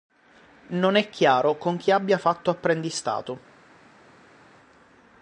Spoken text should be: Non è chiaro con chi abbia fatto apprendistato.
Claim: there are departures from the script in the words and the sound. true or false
false